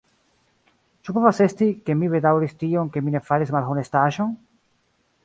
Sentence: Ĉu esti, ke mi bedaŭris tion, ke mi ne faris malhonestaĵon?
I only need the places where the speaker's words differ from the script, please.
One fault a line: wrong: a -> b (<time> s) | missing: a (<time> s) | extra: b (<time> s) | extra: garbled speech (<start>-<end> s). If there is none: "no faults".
extra: povas (1.2 s)